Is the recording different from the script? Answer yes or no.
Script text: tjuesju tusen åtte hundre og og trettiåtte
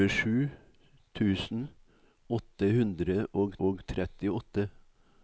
no